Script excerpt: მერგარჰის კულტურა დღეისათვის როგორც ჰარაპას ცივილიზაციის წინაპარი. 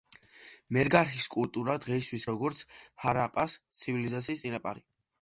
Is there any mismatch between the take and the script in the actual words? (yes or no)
no